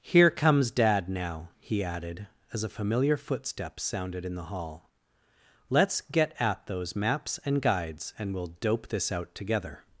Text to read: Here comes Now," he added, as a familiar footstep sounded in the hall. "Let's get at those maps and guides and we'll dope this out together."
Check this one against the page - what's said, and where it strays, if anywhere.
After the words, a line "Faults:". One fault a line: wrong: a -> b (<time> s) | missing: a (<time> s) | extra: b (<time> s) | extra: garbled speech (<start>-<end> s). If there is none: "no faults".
Here comes Dad now," he added, as a familiar footstep sounded in the hall. "Let's get at those maps and guides and we'll dope this out together."
Faults:
extra: Dad (0.7 s)